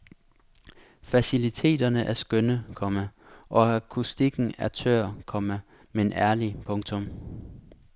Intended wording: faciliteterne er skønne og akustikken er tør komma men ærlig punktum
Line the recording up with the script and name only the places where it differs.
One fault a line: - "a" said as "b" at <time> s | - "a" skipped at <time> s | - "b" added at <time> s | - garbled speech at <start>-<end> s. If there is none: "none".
- "komma" added at 2.8 s